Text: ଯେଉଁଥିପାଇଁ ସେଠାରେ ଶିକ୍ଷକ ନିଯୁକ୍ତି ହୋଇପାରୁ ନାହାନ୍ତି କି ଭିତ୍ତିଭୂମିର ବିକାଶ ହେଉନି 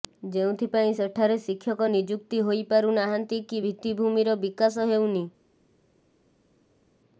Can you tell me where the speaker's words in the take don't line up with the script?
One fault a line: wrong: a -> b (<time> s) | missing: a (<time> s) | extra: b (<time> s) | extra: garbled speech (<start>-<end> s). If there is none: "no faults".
no faults